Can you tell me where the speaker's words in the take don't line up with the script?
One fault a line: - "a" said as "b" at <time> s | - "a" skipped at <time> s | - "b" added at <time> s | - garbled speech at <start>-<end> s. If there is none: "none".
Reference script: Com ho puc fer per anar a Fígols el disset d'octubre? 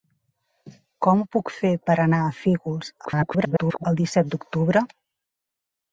- garbled speech at 3.0-3.9 s